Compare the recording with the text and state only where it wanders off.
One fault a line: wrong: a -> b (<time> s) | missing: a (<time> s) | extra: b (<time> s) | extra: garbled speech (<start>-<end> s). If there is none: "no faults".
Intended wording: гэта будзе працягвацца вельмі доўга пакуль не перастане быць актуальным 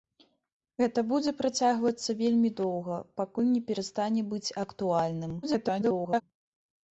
extra: garbled speech (5.4-6.2 s)